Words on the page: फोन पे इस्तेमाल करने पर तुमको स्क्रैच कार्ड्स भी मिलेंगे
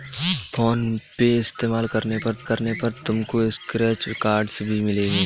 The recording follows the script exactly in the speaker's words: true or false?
false